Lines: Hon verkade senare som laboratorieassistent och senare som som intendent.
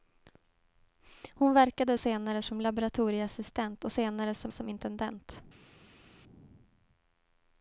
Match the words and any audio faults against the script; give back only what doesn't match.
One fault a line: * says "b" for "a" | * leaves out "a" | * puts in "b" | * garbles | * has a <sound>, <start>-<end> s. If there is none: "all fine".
all fine